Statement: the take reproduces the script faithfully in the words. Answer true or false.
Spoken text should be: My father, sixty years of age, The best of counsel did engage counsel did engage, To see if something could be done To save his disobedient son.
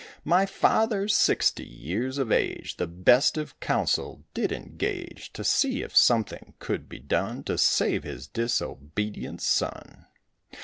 false